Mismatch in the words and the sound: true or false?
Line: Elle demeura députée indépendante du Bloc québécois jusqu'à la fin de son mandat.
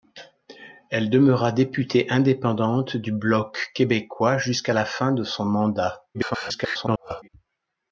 true